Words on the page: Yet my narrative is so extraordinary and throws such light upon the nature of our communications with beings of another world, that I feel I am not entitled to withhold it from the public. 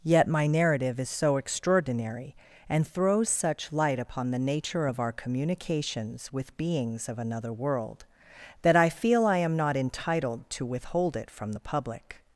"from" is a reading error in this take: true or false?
false